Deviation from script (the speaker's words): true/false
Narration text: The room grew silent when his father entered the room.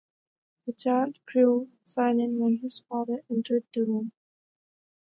true